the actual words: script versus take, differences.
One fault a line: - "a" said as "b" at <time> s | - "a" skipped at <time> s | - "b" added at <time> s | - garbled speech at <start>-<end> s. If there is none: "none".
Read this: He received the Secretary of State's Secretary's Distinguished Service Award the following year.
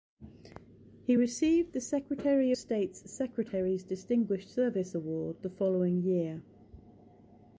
- "of" skipped at 2.5 s